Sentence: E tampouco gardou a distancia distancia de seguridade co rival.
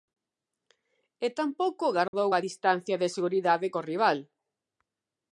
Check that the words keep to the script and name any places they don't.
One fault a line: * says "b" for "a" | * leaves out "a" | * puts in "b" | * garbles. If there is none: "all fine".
* leaves out "distancia"